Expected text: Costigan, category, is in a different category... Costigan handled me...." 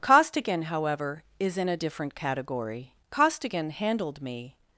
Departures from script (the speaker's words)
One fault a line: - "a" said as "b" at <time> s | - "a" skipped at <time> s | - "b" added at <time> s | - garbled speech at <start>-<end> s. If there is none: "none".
- "category" said as "however" at 0.6 s